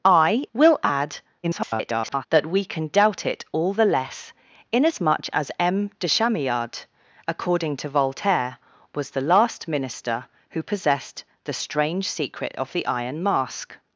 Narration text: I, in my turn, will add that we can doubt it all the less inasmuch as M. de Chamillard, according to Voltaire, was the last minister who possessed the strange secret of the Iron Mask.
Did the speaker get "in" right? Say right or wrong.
wrong